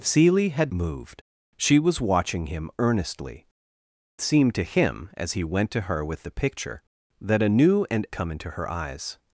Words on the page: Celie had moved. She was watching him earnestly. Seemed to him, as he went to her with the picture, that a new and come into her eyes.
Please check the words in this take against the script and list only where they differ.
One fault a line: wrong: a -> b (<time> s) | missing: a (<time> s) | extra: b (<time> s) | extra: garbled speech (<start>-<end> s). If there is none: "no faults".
no faults